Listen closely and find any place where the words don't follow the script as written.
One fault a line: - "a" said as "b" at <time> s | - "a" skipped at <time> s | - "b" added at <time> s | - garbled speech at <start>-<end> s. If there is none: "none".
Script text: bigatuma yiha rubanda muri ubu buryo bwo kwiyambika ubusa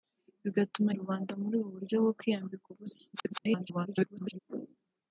- "yiha" skipped at 0.9 s
- garbled speech at 3.1-4.4 s